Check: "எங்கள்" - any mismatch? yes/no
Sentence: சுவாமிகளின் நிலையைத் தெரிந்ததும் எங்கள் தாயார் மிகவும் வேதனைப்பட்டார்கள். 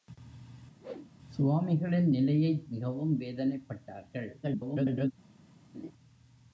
yes